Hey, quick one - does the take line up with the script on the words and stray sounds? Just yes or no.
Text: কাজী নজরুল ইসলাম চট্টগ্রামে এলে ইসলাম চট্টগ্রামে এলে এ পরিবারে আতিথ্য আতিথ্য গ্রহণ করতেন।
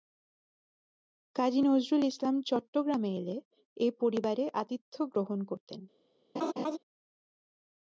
no